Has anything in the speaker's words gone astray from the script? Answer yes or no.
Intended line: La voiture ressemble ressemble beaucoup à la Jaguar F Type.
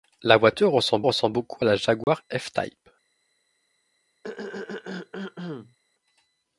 no